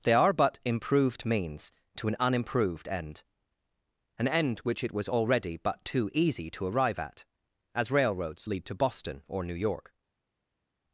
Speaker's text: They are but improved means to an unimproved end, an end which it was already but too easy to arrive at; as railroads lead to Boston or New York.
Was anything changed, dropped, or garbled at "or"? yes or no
no